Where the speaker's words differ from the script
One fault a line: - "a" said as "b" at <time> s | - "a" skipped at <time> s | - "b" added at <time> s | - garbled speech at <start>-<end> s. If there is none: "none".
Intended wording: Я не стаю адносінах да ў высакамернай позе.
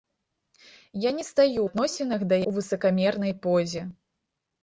none